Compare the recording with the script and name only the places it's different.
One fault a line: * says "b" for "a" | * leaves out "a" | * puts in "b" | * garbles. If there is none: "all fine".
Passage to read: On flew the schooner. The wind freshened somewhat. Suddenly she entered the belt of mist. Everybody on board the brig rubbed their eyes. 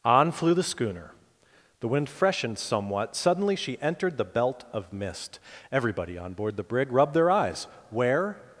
* puts in "Where"